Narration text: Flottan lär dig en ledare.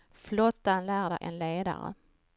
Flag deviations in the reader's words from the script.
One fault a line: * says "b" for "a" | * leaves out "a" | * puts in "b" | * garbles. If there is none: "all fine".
all fine